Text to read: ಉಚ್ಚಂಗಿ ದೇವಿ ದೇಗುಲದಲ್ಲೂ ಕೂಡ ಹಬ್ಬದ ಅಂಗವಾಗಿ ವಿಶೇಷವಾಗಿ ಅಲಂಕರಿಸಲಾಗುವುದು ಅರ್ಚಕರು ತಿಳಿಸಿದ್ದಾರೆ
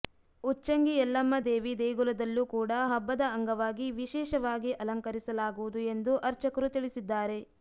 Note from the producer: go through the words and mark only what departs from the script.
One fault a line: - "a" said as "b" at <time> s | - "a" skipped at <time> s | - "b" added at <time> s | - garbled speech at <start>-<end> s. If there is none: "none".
- "ಯಲ್ಲಮ್ಮ" added at 0.9 s
- "ಎಂದು" added at 5.9 s